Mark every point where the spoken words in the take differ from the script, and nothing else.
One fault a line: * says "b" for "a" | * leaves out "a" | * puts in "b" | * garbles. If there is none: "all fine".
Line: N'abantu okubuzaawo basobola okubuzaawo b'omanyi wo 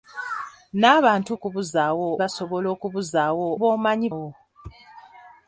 all fine